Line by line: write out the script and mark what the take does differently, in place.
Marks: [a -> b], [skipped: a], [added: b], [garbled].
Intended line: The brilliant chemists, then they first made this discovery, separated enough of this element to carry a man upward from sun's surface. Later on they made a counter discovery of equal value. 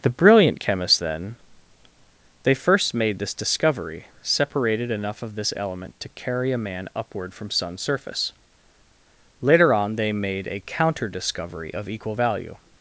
The brilliant chemists, then they first made this discovery, separated enough of this element to carry a man upward from sun's surface. Later on they made a counter discovery of equal value.